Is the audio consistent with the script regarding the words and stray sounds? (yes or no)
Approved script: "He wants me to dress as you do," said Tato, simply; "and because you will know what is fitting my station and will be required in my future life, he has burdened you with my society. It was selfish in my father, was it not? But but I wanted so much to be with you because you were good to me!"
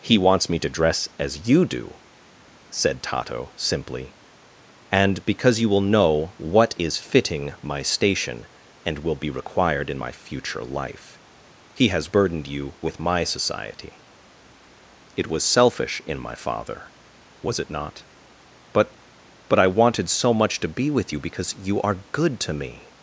no